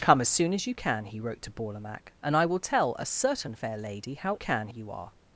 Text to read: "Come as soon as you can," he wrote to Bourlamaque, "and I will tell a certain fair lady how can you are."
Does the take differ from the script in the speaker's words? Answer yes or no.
no